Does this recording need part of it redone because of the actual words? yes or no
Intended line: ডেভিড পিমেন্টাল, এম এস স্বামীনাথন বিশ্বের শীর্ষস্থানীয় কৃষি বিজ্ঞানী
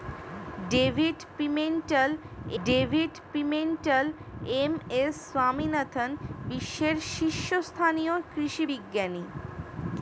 yes